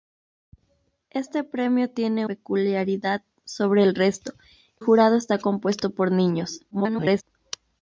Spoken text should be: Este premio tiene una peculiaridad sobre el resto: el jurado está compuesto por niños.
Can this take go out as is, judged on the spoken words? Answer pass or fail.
fail